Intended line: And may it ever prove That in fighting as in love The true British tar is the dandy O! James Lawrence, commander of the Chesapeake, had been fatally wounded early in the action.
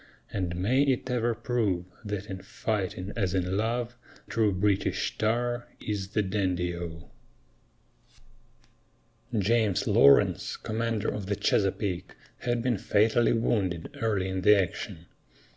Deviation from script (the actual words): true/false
true